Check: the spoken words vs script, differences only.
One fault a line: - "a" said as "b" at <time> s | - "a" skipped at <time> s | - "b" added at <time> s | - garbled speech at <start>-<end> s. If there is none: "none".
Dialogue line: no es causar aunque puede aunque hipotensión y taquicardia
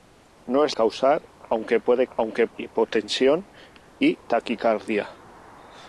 none